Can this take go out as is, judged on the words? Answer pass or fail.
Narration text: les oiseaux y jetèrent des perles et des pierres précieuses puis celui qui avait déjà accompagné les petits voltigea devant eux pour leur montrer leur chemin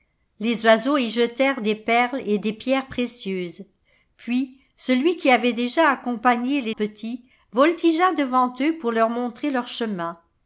pass